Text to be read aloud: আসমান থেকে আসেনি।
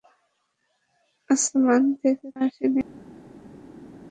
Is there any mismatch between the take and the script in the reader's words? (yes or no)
no